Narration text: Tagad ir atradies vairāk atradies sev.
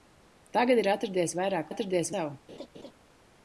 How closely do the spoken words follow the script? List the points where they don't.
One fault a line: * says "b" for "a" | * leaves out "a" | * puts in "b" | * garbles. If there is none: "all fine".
all fine